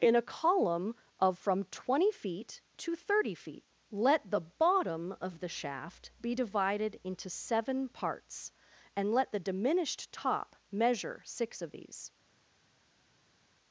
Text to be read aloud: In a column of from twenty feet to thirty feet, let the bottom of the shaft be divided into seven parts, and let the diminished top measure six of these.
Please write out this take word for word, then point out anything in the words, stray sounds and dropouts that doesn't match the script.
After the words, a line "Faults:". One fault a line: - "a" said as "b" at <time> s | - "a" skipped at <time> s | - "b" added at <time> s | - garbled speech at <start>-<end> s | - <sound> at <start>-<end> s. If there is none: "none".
In a column of from twenty feet to thirty feet, let the bottom of the shaft be divided into seven parts, and let the diminished top measure six of these.
Faults:
none